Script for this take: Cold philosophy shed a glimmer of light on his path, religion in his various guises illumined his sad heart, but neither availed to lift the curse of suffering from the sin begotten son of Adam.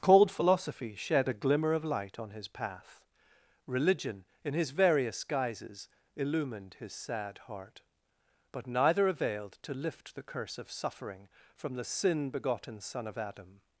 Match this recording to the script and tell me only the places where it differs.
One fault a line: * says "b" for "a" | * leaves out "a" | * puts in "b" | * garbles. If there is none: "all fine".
all fine